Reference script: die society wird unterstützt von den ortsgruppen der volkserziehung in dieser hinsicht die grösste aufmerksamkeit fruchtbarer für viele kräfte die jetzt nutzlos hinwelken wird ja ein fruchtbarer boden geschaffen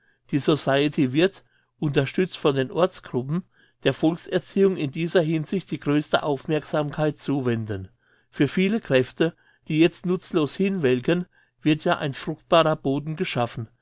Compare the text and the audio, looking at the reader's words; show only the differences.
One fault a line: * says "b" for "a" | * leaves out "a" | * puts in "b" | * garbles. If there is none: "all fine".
* says "zuwenden" for "fruchtbarer"